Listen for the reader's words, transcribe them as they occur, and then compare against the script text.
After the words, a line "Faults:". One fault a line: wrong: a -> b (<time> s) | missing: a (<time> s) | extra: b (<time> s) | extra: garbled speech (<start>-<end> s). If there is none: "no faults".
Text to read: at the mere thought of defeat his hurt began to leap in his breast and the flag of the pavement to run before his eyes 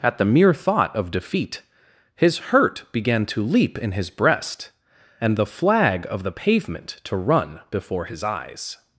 at the mere thought of defeat his hurt began to leap in his breast and the flag of the pavement to run before his eyes
Faults:
no faults